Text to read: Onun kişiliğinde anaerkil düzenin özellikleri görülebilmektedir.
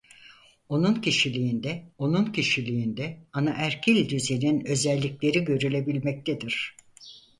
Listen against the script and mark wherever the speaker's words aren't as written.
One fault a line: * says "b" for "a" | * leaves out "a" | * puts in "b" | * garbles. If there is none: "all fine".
* puts in "onun kişiliğinde"